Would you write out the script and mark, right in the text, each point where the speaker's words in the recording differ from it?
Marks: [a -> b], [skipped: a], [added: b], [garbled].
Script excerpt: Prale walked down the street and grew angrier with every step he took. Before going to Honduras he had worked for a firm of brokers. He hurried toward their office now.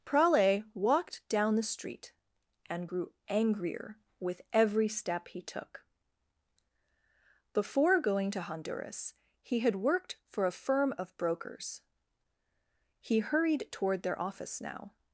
Prale walked down the street and grew angrier with every step he took. Before going to Honduras he had worked for a firm of brokers. He hurried toward their office now.